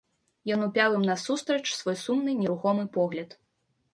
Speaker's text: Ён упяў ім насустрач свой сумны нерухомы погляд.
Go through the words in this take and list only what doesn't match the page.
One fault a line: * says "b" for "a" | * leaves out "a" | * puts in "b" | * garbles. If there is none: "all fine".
all fine